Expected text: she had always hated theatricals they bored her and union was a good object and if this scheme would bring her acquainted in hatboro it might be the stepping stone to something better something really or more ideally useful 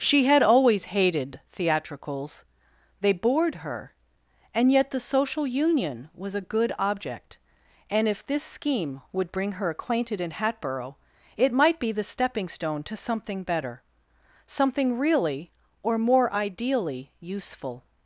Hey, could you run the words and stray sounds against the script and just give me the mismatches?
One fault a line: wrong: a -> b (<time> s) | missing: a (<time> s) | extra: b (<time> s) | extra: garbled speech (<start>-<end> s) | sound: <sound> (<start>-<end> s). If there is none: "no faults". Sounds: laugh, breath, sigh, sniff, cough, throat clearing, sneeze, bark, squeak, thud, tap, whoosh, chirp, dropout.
extra: yet the social (4.7 s)